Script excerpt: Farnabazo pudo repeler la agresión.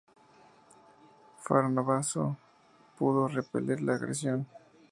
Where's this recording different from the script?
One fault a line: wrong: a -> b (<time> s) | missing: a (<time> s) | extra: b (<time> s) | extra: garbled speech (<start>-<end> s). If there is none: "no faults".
no faults